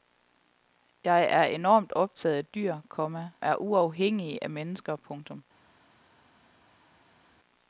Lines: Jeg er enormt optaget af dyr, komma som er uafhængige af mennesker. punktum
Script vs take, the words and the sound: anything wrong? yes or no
yes